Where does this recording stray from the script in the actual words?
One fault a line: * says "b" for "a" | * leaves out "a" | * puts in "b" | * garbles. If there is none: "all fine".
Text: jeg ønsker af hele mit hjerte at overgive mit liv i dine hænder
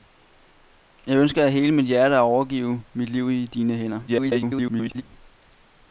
* garbles